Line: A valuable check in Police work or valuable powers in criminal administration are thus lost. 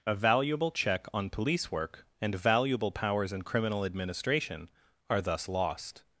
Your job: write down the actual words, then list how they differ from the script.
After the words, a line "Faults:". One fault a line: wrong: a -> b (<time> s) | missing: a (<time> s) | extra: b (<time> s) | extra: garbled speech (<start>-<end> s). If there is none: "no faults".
A valuable check on Police work and valuable powers in criminal administration are thus lost.
Faults:
wrong: in -> on (1.1 s)
wrong: or -> and (2.2 s)